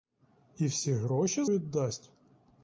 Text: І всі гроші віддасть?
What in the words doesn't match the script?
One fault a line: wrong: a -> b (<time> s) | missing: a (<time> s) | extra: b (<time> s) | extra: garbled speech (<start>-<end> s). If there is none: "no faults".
no faults